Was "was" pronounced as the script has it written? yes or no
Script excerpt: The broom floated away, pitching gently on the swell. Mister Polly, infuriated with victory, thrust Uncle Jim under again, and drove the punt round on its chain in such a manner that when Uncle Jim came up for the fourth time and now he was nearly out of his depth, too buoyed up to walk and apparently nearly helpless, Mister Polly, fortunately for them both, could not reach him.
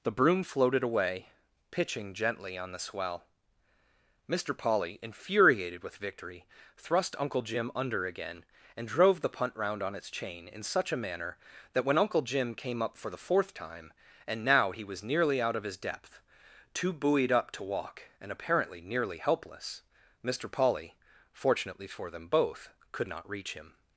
yes